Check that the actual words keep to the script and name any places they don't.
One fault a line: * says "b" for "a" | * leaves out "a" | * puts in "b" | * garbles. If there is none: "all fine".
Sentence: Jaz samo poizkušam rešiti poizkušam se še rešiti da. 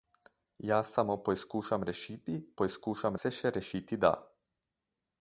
all fine